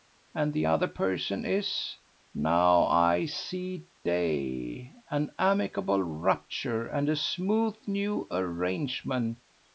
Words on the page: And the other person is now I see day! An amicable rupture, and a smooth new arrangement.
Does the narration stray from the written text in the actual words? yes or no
no